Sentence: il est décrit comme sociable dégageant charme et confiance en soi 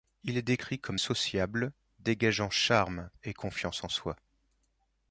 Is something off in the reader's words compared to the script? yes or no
no